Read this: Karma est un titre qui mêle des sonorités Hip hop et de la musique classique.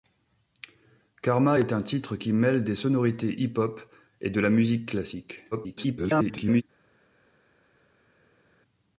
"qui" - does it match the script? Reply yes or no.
yes